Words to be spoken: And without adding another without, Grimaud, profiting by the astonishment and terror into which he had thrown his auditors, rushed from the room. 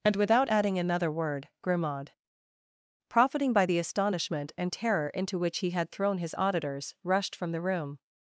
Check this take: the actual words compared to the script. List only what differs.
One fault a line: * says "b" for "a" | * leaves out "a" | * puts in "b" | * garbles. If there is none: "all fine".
* says "word" for "without"